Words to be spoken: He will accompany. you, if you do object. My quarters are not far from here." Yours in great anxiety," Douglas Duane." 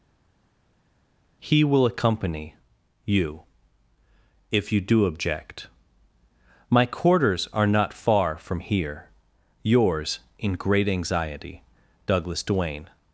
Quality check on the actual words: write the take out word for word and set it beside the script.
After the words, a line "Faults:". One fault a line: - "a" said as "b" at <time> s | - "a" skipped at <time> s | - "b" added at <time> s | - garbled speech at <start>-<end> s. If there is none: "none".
He will accompany. you, if you do object. My quarters are not far from here." Yours in great anxiety," Douglas Duane."
Faults:
none